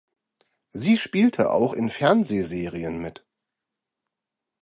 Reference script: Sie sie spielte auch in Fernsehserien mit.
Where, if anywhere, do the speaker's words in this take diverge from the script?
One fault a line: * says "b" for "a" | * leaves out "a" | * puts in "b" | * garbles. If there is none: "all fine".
* leaves out "sie"